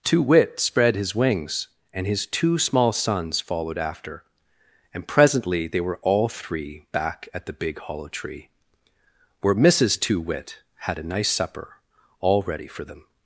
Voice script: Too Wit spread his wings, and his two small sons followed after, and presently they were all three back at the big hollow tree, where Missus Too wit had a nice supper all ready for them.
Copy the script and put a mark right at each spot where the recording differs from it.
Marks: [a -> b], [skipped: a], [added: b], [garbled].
Too Wit spread his wings, and his two small sons followed after, and presently they were all three back at the big hollow tree, where Missus Too wit had a nice supper all ready for them.